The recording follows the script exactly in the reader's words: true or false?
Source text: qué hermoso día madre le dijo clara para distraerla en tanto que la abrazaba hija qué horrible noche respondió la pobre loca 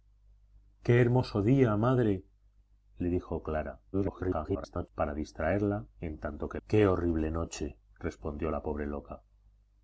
false